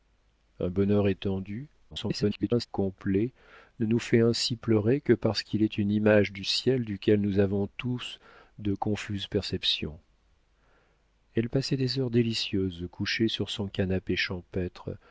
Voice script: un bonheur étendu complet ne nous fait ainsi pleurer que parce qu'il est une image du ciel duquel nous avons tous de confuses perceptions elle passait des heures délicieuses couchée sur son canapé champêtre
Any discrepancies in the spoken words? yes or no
yes